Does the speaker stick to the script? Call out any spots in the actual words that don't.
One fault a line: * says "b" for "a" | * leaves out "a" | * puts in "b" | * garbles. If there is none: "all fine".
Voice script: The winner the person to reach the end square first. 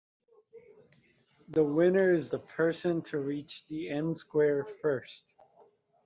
* puts in "is"